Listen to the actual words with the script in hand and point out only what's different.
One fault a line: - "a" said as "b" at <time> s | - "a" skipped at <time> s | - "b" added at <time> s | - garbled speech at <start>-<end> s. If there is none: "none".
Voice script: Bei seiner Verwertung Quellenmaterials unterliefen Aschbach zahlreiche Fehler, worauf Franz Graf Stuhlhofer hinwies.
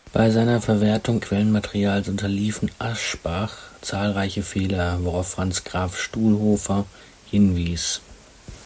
none